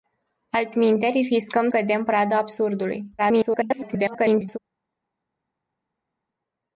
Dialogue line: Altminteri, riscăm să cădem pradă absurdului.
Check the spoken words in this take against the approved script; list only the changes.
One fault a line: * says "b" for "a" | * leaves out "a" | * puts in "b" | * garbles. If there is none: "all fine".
* leaves out "să"
* garbles